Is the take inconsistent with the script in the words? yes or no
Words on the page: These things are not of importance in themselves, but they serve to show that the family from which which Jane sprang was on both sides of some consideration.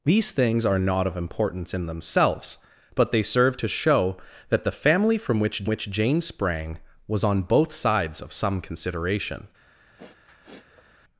no